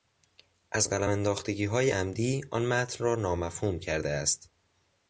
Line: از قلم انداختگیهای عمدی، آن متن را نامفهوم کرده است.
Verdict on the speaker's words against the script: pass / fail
pass